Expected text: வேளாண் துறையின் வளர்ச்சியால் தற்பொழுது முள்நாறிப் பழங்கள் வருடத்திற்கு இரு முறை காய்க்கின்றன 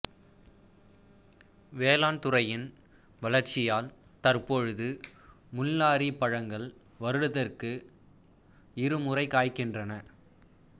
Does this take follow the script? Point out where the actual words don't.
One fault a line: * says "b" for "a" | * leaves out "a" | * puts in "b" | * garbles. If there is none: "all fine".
all fine